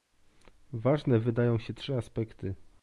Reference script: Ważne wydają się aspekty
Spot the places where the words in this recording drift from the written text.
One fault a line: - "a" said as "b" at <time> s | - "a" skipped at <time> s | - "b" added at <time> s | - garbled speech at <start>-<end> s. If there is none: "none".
- "trzy" added at 1.7 s